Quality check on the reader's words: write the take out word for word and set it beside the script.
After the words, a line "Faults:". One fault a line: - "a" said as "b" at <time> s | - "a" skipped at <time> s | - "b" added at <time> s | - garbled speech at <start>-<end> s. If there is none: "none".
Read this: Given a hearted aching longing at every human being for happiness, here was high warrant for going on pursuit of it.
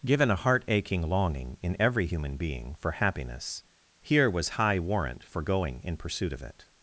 Given a heart aching longing in every human being for happiness, here was high warrant for going in pursuit of it.
Faults:
- "hearted" said as "heart" at 0.3 s
- "at" said as "in" at 1.6 s
- "on" said as "in" at 5.8 s